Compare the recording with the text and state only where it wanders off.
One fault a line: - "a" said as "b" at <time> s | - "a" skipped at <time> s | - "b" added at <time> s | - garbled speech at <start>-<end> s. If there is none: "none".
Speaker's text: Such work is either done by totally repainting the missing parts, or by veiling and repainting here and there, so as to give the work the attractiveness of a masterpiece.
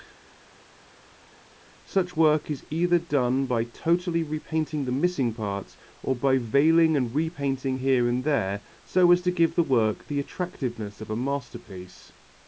none